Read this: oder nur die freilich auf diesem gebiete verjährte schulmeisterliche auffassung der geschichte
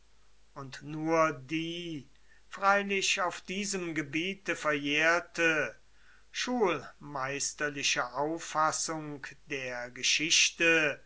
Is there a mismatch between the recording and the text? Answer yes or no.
yes